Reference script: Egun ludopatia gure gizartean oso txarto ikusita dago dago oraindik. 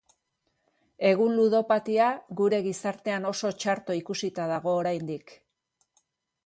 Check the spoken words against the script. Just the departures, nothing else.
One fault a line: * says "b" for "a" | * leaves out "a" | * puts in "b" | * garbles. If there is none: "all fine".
* leaves out "dago"